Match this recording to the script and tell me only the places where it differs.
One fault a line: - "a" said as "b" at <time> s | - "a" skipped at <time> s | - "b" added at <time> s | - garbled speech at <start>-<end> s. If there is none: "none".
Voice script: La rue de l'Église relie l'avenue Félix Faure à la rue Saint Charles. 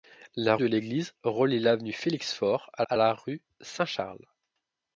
- "rue" skipped at 0.6 s
- "à" added at 2.9 s